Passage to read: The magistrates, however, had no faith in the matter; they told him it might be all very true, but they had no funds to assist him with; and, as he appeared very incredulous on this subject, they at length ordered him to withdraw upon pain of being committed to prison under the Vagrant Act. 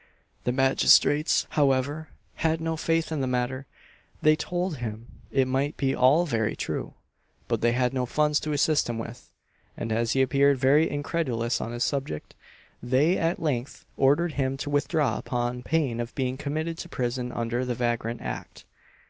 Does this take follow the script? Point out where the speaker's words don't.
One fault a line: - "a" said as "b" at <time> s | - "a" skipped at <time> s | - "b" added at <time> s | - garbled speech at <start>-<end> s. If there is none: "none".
none